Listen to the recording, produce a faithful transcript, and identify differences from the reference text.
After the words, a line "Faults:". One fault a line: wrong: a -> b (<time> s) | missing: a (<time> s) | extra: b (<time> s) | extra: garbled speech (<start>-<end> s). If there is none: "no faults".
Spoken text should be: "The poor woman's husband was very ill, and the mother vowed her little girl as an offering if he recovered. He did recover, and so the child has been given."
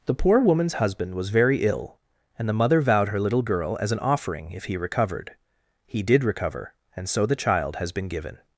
"The poor woman's husband was very ill, and the mother vowed her little girl as an offering if he recovered. He did recover, and so the child has been given."
Faults:
no faults